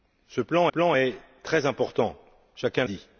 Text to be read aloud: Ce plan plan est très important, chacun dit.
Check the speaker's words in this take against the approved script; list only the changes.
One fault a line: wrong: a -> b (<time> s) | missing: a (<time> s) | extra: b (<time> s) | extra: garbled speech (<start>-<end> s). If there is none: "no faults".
no faults